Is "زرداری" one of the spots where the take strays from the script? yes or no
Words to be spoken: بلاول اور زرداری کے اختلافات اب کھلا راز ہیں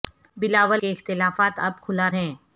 yes